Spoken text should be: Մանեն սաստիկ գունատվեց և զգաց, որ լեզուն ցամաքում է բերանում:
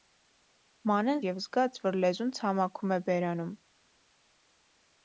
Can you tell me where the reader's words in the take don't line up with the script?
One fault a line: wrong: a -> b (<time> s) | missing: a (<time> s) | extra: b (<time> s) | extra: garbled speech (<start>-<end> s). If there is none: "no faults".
missing: սաստիկ գունատվեց (1.2 s)